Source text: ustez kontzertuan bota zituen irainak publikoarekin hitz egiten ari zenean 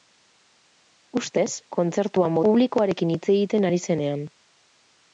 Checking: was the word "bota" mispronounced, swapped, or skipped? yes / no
yes